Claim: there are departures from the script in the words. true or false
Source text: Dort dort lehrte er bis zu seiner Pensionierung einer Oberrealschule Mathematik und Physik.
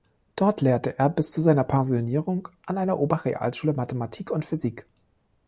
true